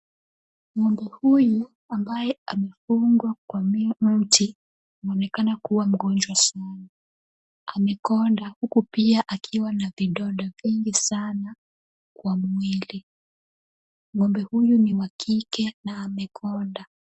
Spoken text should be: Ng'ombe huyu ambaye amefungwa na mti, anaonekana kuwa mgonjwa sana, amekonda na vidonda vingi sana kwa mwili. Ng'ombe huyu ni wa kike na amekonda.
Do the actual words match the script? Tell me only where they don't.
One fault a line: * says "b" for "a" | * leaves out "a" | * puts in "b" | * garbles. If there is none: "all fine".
* says "kwa" for "na"
* puts in "huku pia akiwa"